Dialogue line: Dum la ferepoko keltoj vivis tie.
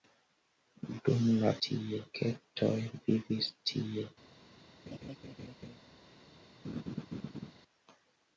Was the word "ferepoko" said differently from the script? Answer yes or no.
yes